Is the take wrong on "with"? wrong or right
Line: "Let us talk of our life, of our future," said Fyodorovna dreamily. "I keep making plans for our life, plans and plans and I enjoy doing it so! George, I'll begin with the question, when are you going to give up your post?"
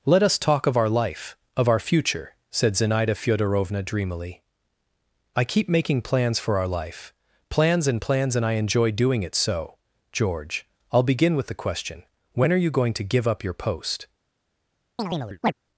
right